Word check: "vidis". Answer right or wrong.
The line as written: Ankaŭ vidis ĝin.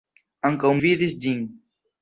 right